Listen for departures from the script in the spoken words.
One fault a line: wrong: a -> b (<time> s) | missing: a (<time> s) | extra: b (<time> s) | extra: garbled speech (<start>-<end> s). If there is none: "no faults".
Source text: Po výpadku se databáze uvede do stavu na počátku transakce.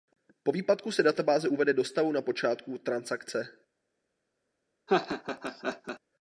no faults